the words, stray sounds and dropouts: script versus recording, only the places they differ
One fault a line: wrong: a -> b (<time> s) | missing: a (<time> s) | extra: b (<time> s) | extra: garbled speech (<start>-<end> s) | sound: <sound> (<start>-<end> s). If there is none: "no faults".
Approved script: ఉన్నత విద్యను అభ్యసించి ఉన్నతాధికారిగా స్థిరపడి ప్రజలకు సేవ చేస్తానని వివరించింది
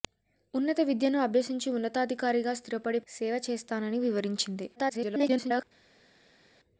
missing: ప్రజలకు (3.0 s)
extra: garbled speech (4.8-5.6 s)